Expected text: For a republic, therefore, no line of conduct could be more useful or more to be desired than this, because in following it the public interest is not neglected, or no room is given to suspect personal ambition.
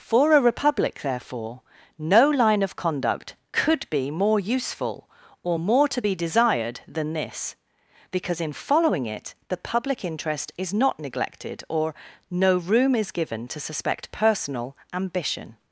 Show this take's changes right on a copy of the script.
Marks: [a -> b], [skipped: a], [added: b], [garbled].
For a republic, therefore, no line of conduct could be more useful or more to be desired than this, because in following it the public interest is not neglected, or no room is given to suspect personal ambition.